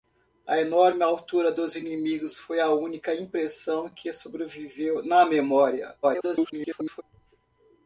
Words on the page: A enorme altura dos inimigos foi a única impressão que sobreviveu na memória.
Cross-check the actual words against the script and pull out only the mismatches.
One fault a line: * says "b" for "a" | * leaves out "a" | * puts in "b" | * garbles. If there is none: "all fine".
* garbles